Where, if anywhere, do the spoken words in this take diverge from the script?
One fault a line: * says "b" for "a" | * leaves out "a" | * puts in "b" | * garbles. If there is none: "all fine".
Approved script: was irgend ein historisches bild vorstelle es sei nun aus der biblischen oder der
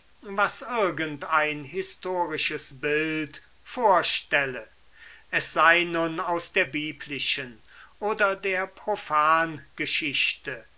all fine